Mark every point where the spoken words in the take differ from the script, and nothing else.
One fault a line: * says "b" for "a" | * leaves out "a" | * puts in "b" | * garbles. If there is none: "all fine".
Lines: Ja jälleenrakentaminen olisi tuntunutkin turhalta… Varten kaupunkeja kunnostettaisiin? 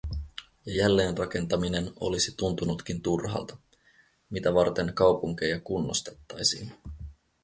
* puts in "Mitä"